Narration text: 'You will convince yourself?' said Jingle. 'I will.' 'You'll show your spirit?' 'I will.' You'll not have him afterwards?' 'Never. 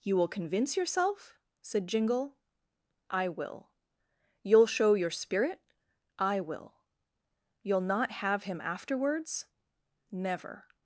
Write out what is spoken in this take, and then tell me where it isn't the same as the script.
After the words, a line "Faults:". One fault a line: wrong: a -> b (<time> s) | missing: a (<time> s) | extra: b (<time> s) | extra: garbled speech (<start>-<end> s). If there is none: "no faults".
'You will convince yourself?' said Jingle. 'I will.' 'You'll show your spirit?' 'I will.' You'll not have him afterwards?' 'Never.
Faults:
no faults